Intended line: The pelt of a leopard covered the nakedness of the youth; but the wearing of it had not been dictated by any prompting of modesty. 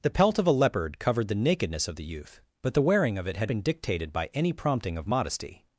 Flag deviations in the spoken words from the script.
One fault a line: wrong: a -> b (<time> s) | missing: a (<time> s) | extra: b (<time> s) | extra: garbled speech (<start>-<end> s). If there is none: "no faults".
missing: not (3.5 s)